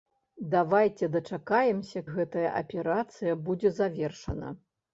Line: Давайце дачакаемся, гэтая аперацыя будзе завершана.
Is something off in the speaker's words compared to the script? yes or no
no